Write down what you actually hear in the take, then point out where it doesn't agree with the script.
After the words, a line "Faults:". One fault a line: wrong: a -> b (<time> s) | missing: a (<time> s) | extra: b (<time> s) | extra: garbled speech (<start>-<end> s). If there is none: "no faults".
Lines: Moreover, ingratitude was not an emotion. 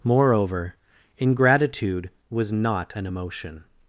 Moreover, ingratitude was not an emotion.
Faults:
no faults